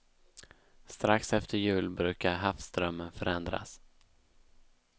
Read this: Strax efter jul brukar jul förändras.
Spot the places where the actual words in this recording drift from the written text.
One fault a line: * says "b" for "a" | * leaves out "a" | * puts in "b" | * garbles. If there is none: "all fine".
* says "havsströmmen" for "jul"